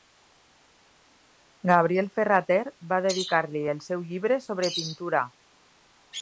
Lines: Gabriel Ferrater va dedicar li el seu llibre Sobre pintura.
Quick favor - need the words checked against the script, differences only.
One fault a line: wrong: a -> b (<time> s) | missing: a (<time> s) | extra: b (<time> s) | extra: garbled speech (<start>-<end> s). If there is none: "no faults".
no faults